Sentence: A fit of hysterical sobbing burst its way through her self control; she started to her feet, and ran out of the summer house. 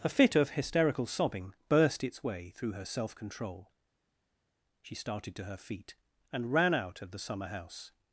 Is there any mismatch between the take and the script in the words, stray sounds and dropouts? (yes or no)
no